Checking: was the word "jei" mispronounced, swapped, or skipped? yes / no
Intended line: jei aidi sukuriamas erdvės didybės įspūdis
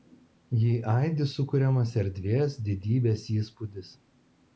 no